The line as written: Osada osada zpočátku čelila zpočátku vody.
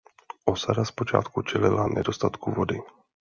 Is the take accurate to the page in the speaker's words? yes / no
no